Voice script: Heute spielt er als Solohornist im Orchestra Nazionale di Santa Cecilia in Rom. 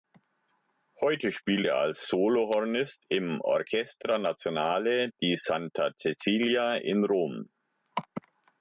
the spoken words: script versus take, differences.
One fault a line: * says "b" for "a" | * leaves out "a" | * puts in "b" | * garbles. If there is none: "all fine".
all fine